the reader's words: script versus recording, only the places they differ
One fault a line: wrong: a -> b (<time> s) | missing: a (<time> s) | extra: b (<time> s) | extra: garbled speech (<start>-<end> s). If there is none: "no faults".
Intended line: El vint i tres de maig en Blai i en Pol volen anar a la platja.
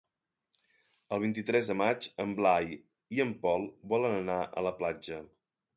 no faults